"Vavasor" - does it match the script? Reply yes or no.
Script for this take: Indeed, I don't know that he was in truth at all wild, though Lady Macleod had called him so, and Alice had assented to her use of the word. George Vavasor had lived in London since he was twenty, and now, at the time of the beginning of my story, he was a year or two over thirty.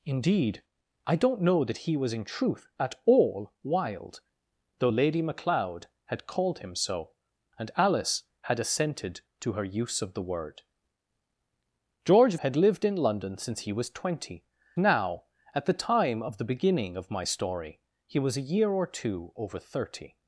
no